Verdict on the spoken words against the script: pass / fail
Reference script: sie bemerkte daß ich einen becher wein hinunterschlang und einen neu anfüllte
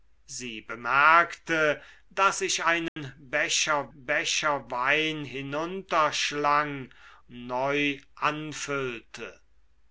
fail